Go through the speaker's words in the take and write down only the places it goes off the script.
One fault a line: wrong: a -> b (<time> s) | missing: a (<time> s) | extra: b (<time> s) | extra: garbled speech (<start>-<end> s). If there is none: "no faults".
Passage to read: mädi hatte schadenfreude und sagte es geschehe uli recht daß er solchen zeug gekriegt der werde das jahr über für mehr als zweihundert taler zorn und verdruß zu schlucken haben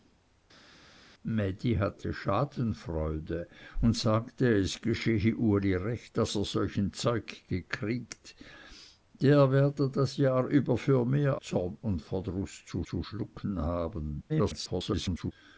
missing: als zweihundert taler (11.4 s)
extra: zu (12.8 s)
extra: garbled speech (14.3-15.3 s)